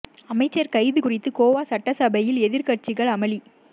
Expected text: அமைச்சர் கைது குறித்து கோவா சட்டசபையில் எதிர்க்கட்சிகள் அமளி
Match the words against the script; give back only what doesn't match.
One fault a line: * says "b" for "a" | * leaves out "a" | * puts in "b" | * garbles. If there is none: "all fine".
all fine